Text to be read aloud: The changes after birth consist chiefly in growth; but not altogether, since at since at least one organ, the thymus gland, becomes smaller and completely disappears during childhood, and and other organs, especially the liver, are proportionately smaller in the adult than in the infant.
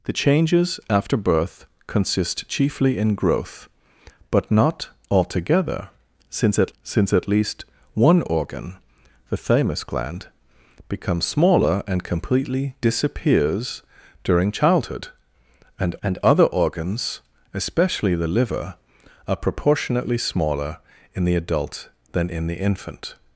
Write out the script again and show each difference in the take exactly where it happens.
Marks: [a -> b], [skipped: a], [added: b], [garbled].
The changes after birth consist chiefly in growth; but not altogether, since at since at least one organ, the thymus gland, becomes smaller and completely disappears during childhood, and and other organs, especially the liver, are proportionately smaller in the adult than in the infant.